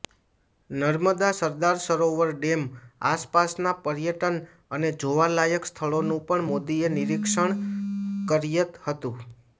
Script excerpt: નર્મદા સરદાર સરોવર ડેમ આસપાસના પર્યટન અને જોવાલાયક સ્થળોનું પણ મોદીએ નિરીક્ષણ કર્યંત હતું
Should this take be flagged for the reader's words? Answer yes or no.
no